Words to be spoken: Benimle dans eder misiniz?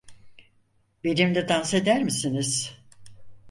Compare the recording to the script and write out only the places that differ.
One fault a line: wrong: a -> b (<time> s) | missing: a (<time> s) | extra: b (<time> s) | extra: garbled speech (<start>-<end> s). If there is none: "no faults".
no faults